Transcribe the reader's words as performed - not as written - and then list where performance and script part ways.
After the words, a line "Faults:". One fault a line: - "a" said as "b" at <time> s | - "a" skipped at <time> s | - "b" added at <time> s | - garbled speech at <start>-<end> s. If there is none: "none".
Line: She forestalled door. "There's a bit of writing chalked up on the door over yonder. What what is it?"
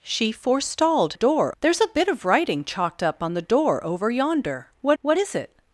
She forestalled door. "There's a bit of writing chalked up on the door over yonder. What what is it?"
Faults:
none